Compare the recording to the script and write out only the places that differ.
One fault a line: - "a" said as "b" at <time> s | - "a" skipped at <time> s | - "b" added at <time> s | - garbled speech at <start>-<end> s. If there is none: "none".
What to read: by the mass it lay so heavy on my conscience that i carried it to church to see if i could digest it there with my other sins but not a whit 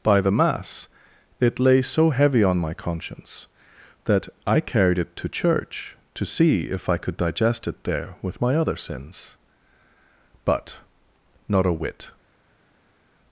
none